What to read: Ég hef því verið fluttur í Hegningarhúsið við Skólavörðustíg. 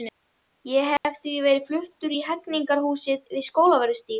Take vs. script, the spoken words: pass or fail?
pass